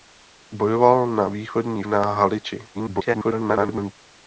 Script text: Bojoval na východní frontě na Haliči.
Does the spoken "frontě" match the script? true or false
false